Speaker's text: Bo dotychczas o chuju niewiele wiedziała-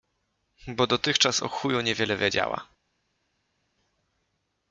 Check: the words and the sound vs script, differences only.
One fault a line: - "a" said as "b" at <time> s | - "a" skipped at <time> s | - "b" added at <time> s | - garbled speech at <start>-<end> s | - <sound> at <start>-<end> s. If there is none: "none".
none